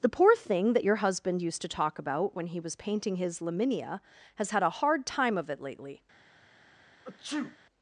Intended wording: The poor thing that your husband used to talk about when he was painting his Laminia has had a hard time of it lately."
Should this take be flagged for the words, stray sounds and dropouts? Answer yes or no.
yes